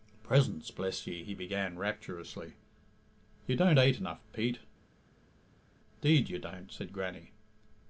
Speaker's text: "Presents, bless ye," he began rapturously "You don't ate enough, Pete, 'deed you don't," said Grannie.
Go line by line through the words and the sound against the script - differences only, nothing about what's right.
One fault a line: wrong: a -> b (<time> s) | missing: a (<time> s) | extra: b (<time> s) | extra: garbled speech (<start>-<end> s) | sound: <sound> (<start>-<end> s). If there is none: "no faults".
no faults